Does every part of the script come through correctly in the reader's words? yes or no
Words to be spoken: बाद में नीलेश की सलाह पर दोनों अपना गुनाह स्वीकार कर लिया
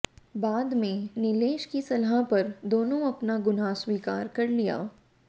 yes